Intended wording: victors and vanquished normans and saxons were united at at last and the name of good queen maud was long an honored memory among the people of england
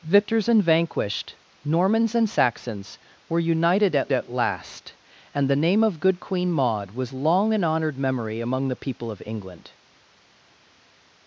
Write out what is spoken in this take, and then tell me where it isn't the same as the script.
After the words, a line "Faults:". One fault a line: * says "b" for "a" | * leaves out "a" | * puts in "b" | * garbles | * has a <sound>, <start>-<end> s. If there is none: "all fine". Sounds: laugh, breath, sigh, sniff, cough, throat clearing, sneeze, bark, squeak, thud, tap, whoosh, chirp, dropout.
victors and vanquished normans and saxons were united at at last and the name of good queen maud was long an honored memory among the people of england
Faults:
all fine